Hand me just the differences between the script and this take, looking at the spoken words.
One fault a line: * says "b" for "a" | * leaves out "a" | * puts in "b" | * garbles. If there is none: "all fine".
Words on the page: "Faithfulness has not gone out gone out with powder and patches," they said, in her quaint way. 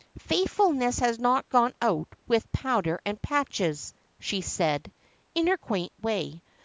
* leaves out "gone out"
* says "she" for "they"